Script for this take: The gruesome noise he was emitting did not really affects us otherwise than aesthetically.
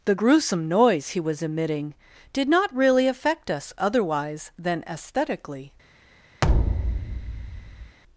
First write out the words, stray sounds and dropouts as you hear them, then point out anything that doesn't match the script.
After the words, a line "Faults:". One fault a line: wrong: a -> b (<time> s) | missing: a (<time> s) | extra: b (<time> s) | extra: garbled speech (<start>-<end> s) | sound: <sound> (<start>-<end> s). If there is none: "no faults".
The gruesome noise he was emitting did not really affect us otherwise than aesthetically.
Faults:
wrong: affects -> affect (3.1 s)
sound: thud (6.4-8.0 s)